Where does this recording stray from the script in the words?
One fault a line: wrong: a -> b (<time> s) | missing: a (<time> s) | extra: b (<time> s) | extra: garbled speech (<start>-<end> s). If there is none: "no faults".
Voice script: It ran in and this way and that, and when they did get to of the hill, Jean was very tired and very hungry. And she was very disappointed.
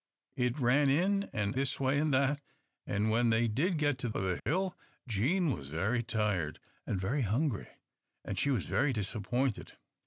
no faults